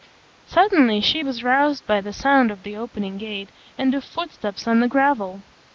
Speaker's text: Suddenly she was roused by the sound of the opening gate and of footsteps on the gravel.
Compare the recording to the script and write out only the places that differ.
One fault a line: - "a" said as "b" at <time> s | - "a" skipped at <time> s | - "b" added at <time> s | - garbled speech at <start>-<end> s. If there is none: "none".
none